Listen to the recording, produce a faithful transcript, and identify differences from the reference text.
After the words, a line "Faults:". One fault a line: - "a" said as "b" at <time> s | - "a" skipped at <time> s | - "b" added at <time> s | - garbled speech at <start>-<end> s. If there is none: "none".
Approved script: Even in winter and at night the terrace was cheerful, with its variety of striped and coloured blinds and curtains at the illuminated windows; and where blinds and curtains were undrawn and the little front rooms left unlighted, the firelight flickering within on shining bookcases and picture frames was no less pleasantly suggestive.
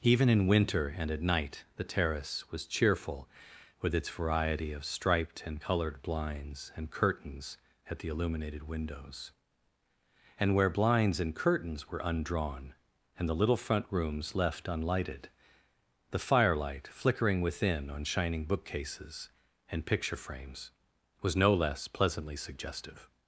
Even in winter and at night the terrace was cheerful, with its variety of striped and coloured blinds and curtains at the illuminated windows; and where blinds and curtains were undrawn and the little front rooms left unlighted, the firelight flickering within on shining bookcases and picture frames was no less pleasantly suggestive.
Faults:
none